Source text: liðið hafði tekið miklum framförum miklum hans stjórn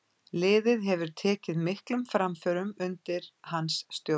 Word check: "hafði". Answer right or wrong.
wrong